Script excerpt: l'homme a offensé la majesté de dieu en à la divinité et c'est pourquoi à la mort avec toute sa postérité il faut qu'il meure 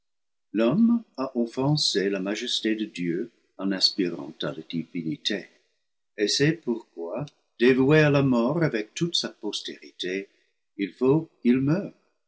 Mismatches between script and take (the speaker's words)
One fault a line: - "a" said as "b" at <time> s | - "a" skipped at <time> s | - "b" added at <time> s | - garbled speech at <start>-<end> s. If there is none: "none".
- "aspirant" added at 3.7 s
- "dévoué" added at 7.6 s